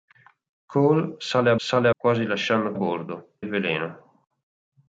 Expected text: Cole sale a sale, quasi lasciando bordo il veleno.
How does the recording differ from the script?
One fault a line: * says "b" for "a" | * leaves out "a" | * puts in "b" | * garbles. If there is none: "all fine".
all fine